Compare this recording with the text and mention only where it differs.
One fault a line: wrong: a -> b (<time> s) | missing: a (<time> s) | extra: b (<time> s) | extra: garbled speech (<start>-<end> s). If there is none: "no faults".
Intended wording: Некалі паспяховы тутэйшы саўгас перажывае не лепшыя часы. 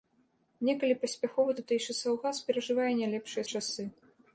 no faults